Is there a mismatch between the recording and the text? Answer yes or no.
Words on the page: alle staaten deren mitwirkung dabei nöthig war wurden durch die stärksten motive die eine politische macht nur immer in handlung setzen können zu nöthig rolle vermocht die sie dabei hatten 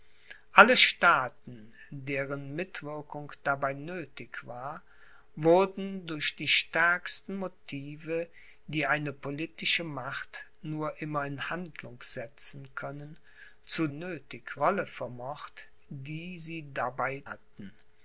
no